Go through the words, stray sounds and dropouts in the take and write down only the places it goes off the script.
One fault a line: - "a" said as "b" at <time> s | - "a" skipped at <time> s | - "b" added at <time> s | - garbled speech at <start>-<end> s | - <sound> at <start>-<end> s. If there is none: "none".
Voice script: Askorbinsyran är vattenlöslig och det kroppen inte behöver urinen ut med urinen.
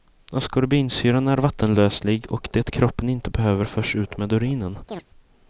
- "urinen" said as "förs" at 3.6 s
- chirp at 4.9-5.0 s